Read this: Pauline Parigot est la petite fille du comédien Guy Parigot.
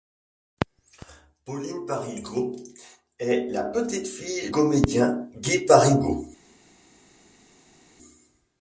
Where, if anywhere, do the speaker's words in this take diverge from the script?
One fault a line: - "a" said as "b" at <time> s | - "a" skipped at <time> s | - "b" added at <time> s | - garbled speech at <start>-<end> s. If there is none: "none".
- "du" skipped at 4.5 s